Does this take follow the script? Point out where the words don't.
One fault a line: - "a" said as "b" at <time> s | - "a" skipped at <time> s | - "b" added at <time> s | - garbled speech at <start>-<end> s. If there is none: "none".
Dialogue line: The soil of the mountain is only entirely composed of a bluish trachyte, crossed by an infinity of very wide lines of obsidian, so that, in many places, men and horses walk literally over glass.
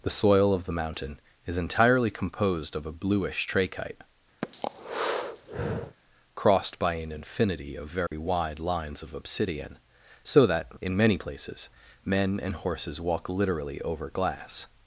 - "only" skipped at 1.6 s